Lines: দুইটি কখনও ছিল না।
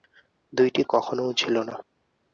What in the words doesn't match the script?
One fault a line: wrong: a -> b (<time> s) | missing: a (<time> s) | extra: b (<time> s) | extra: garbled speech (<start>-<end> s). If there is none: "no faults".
no faults